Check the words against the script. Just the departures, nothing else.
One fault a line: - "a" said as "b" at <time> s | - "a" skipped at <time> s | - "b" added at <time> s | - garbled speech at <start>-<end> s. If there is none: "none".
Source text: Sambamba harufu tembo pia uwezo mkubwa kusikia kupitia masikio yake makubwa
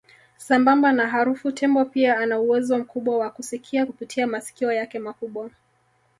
- "na" added at 0.9 s
- "ana" added at 2.2 s
- "wa" added at 3.2 s